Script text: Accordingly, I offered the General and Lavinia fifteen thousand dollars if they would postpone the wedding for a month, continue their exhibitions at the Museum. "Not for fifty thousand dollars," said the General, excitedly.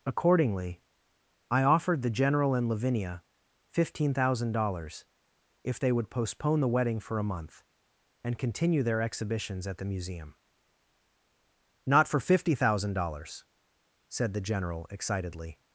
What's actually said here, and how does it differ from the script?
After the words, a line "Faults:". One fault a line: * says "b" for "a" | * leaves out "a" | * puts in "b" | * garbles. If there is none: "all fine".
Accordingly, I offered the General and Lavinia fifteen thousand dollars if they would postpone the wedding for a month, and continue their exhibitions at the Museum. "Not for fifty thousand dollars," said the General, excitedly.
Faults:
* puts in "and"